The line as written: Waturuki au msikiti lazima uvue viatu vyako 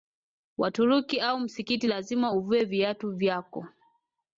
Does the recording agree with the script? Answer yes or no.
yes